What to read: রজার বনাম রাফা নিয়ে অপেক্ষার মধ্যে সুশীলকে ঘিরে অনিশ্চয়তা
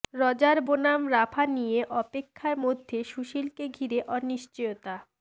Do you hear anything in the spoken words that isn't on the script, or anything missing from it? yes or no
no